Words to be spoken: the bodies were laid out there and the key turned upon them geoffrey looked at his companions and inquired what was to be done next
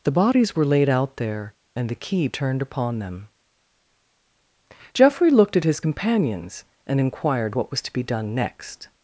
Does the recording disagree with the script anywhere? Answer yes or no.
no